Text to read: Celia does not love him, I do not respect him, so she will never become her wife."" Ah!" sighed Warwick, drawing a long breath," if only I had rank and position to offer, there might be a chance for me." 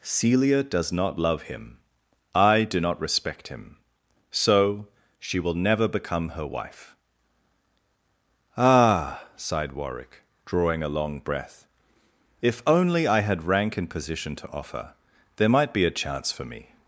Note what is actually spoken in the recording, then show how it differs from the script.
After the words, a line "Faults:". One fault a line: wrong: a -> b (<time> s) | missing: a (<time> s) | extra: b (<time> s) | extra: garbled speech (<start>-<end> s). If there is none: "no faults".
Celia does not love him, I do not respect him, so she will never become her wife."" Ah!" sighed Warwick, drawing a long breath," if only I had rank and position to offer, there might be a chance for me."
Faults:
no faults